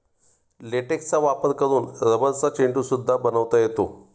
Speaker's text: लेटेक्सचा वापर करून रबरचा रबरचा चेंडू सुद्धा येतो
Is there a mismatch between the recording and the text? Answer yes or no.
yes